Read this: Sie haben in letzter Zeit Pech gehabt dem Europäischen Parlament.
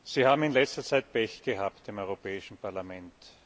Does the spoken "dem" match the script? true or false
true